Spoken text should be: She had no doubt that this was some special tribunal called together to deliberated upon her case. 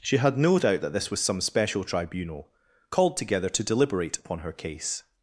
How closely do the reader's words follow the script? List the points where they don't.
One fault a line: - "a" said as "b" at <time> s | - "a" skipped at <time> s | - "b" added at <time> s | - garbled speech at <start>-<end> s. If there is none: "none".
- "deliberated" said as "deliberate" at 3.6 s